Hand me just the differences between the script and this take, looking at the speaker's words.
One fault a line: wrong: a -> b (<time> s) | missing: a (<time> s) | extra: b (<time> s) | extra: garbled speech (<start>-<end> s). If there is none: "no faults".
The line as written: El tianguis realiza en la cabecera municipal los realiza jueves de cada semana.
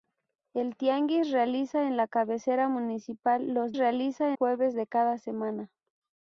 no faults